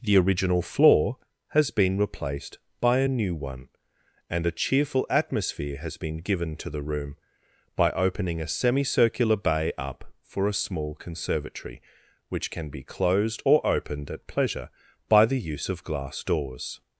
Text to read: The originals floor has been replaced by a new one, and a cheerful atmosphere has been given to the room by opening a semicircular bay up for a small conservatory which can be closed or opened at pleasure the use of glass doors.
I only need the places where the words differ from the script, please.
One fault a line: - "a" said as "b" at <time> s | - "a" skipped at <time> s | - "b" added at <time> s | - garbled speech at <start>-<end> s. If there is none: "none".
- "originals" said as "original" at 0.2 s
- "by" added at 15.1 s